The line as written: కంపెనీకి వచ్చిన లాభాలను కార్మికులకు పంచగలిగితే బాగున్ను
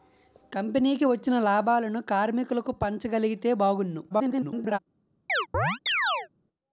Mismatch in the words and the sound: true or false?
true